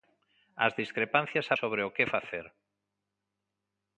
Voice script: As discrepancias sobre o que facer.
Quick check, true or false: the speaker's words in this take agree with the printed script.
true